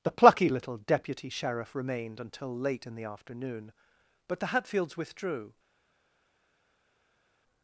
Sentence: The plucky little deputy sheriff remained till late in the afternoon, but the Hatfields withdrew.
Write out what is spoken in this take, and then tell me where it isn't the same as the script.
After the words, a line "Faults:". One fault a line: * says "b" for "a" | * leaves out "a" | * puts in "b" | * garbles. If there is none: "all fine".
The plucky little deputy sheriff remained until late in the afternoon, but the Hatfields withdrew.
Faults:
* says "until" for "till"